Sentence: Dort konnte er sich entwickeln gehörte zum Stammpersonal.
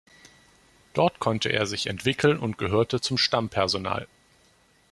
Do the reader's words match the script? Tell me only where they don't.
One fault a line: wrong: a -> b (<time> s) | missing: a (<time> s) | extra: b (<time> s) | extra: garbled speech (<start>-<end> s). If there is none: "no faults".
extra: und (2.4 s)